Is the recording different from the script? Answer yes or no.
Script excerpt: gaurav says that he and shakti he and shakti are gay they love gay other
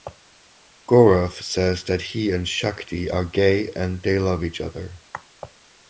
yes